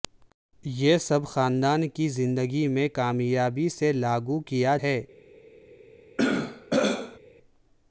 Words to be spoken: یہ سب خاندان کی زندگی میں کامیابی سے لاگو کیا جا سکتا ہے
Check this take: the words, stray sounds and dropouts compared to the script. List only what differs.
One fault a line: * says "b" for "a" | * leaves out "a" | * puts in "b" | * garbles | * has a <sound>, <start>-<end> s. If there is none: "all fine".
* leaves out "جا سکتا"
* has a throat clearing, 6.2-7.2 s